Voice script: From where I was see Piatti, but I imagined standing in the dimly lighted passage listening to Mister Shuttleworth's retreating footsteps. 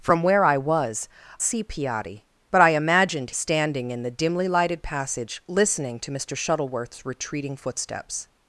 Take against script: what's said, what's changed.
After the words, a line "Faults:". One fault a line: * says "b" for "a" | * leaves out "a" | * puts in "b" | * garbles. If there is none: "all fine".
From where I was see Piatti, but I imagined standing in the dimly lighted passage listening to Mister Shuttleworth's retreating footsteps.
Faults:
all fine